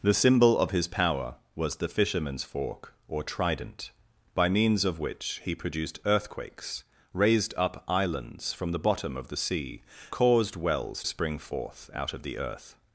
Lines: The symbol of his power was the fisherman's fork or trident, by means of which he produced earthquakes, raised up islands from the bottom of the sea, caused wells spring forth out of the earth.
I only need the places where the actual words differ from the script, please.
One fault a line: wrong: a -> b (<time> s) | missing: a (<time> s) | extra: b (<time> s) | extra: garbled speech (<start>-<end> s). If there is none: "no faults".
no faults